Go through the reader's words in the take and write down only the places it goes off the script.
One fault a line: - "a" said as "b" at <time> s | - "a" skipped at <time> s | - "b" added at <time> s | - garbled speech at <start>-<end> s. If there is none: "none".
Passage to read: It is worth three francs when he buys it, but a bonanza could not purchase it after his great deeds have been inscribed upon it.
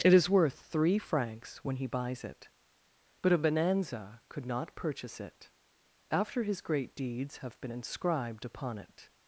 none